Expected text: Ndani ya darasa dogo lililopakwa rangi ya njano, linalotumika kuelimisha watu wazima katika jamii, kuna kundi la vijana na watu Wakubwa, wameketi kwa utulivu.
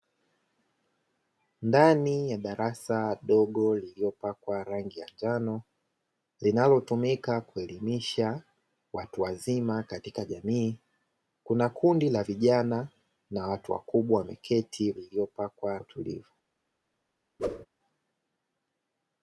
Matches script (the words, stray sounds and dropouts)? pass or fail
fail